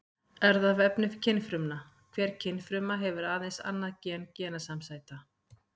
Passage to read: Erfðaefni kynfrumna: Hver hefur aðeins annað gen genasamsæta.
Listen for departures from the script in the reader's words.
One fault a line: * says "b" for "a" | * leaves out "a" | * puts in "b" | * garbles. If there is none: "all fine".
* puts in "kynfruma"